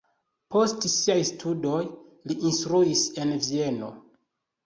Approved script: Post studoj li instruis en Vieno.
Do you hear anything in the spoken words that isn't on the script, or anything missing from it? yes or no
yes